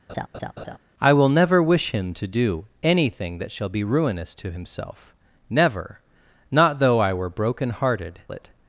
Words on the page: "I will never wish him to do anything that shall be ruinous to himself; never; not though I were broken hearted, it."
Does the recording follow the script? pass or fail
pass